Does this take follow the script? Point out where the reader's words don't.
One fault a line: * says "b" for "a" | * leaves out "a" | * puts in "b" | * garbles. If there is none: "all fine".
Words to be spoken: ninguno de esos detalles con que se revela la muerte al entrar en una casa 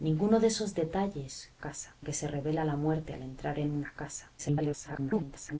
* says "casa" for "con"
* garbles